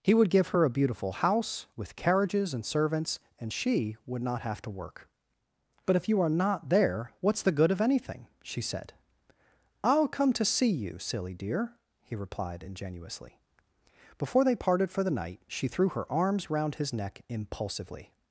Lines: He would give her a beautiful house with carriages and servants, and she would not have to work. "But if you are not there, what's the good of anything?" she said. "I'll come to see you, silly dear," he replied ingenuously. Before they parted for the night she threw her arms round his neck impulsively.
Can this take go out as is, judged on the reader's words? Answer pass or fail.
pass